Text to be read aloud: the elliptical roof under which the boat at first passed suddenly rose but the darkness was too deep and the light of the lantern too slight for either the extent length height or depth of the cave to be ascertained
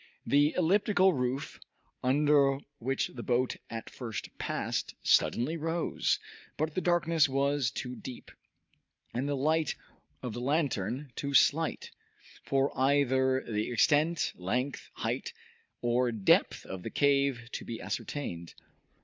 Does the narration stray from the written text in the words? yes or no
no